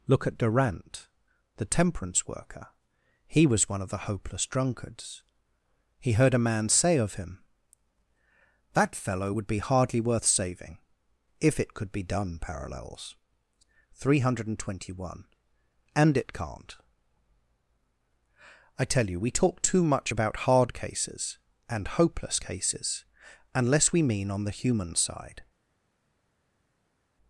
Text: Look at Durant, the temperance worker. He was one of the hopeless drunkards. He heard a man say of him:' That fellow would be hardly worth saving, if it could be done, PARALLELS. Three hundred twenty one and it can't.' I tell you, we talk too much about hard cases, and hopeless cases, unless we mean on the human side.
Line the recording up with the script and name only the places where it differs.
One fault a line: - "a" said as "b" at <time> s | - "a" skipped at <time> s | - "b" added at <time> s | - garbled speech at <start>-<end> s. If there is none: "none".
none